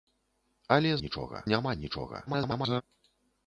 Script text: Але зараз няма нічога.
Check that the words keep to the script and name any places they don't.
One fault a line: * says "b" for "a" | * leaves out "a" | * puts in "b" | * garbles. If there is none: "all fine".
* says "нічога" for "зараз"
* garbles